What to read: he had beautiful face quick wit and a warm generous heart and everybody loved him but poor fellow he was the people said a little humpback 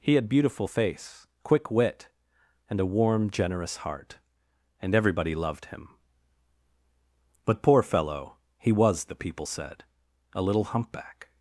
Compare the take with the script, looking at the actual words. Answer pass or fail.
pass